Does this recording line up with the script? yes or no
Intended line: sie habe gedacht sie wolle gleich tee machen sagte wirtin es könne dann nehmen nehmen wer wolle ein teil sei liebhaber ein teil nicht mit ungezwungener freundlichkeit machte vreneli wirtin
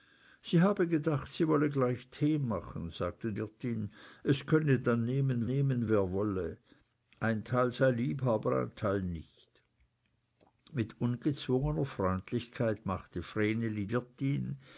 yes